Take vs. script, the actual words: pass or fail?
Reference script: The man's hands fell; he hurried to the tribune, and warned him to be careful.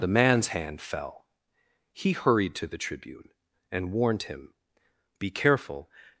fail